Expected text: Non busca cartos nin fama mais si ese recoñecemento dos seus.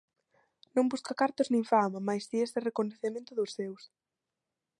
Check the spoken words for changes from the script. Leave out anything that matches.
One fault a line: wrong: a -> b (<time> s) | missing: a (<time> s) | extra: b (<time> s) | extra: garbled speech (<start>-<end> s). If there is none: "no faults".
no faults